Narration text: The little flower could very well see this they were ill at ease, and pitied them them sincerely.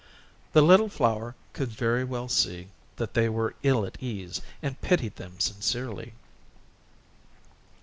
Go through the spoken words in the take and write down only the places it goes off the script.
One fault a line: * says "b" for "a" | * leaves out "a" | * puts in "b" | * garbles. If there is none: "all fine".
* says "that" for "this"
* leaves out "them"